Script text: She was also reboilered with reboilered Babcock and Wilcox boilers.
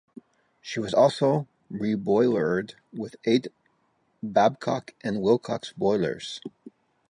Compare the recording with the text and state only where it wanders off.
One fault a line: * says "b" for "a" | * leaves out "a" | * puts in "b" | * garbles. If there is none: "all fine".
* says "eight" for "reboilered"